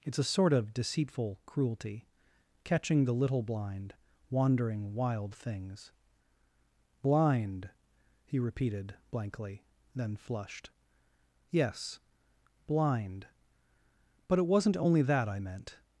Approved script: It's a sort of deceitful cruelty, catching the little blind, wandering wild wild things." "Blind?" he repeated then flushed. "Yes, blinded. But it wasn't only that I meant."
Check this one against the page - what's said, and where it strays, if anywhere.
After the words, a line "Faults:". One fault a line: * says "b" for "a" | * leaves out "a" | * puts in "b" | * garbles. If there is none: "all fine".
It's a sort of deceitful cruelty, catching the little blind, wandering wild things." "Blind?" he repeated blankly, then flushed. "Yes, blind. But it wasn't only that I meant."
Faults:
* leaves out "wild"
* puts in "blankly"
* says "blind" for "blinded"